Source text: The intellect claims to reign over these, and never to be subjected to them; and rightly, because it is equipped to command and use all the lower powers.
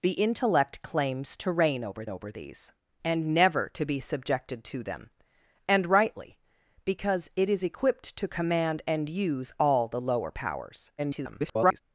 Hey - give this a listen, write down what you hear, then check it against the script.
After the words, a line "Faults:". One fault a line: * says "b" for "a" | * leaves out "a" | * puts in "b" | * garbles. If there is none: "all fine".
The intellect claims to reign over over these, and never to be subjected to them; and rightly, because it is equipped to command and use all the lower powers. [garbled]
Faults:
* puts in "over"
* garbles